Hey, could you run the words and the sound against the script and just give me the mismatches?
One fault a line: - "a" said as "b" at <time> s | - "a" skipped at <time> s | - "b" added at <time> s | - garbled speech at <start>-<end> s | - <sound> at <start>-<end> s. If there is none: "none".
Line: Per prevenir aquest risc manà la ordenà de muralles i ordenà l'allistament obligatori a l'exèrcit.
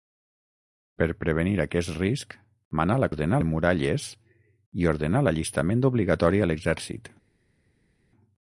none